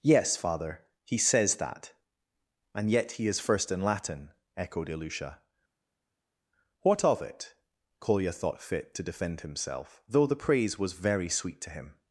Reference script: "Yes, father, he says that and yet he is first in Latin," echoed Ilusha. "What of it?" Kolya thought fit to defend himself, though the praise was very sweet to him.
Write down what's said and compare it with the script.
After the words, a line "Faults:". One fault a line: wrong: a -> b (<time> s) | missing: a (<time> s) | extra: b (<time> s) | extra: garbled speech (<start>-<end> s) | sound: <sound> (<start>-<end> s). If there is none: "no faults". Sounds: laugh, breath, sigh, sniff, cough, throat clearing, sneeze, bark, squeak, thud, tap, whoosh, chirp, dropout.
"Yes, father, he says that and yet he is first in Latin," echoed Ilusha. "What of it?" Kolya thought fit to defend himself, though the praise was very sweet to him.
Faults:
no faults